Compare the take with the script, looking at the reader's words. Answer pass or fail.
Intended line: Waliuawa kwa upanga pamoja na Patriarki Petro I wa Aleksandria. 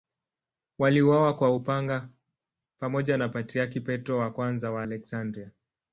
pass